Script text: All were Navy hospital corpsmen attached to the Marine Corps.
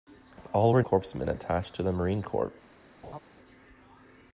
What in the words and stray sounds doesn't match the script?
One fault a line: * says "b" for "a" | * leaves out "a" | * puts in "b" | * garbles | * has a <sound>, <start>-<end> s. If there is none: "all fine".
* leaves out "Navy hospital"
* has a laugh, 3.0-3.2 s